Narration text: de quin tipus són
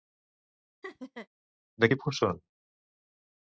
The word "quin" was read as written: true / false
false